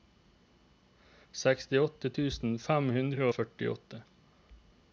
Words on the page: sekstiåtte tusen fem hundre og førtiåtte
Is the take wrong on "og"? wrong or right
right